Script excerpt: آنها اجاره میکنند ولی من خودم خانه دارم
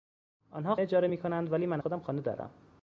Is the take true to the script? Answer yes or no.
yes